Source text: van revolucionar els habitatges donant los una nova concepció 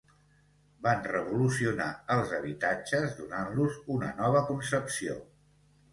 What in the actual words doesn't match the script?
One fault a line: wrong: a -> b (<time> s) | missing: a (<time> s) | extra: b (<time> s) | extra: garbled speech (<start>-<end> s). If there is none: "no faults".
no faults